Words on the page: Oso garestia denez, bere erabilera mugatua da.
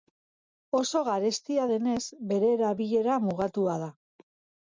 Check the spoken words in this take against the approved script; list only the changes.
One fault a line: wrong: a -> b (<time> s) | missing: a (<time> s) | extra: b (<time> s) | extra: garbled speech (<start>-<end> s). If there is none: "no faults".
no faults